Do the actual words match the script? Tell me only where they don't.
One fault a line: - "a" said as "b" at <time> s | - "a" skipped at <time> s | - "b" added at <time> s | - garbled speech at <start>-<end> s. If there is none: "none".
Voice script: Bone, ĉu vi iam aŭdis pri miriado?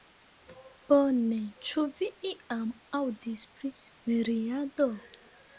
none